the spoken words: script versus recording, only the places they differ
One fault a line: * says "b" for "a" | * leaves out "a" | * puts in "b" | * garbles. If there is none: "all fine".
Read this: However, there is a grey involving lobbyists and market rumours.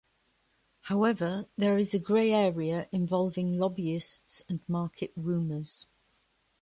* puts in "area"